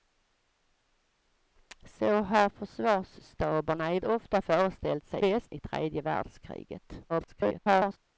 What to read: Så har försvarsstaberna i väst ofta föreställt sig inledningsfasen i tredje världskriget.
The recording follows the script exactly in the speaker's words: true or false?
false